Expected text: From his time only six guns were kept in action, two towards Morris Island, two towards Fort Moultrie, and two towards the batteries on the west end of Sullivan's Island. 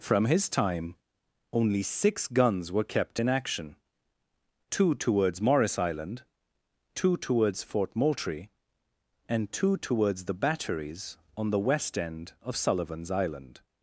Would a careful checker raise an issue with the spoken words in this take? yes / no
no